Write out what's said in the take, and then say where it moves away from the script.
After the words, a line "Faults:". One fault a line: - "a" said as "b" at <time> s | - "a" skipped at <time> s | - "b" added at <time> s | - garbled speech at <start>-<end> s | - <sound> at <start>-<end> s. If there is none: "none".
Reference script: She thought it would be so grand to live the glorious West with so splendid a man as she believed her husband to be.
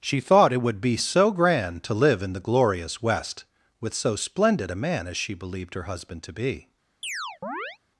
She thought it would be so grand to live in the glorious West with so splendid a man as she believed her husband to be.
Faults:
- "in" added at 2.2 s
- chirp at 7.0-7.8 s